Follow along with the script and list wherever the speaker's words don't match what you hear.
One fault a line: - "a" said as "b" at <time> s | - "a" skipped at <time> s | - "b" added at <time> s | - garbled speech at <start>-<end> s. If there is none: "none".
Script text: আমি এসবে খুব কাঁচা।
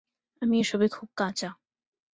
none